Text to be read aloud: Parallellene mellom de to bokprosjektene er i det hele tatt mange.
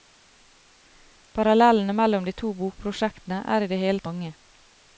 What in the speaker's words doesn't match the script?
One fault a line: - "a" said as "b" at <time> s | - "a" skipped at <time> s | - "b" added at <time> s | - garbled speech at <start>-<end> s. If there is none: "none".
- "tatt" skipped at 4.1 s